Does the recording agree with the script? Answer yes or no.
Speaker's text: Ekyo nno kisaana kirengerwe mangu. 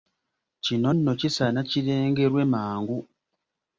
no